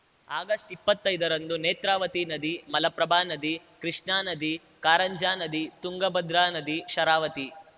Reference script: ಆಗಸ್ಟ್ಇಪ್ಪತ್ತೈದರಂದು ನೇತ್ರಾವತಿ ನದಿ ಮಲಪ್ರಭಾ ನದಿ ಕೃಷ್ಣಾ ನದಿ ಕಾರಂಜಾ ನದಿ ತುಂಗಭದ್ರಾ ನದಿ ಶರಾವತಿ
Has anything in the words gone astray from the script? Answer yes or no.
no